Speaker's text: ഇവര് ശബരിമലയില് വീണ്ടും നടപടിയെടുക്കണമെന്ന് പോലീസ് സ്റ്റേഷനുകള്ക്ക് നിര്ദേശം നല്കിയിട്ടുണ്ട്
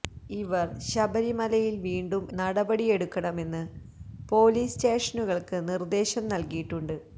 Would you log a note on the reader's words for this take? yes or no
no